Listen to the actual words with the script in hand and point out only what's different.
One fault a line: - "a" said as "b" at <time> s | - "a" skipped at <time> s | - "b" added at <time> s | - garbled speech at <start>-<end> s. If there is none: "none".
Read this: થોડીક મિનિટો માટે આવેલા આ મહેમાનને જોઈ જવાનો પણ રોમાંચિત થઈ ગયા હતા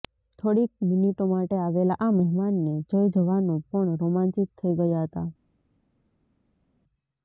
none